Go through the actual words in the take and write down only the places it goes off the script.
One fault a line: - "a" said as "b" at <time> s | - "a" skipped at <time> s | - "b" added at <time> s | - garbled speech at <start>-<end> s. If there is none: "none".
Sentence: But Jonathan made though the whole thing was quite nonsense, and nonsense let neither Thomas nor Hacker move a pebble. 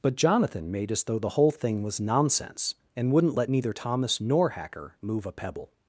- "as" added at 0.9 s
- "quite" skipped at 2.0 s
- "nonsense" said as "wouldn't" at 3.1 s